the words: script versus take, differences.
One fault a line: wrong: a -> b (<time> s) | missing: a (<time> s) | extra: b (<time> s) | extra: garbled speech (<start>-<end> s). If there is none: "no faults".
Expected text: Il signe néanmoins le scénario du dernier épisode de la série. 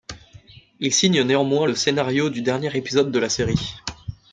no faults